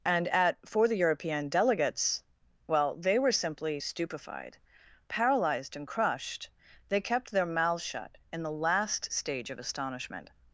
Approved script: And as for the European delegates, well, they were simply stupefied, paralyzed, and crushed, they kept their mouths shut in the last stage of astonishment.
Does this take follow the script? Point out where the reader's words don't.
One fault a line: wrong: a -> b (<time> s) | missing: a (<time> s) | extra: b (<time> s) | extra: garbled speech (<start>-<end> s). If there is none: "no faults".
wrong: as -> at (0.3 s)